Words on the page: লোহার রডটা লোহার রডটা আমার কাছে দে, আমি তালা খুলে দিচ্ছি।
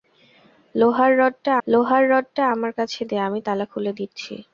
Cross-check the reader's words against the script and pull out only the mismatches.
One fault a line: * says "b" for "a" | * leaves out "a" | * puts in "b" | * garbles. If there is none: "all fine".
all fine